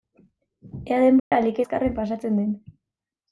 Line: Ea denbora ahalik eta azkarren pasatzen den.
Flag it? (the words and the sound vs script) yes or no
yes